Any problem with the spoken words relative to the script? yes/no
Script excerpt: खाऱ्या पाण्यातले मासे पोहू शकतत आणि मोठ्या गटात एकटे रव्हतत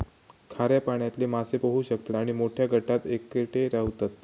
no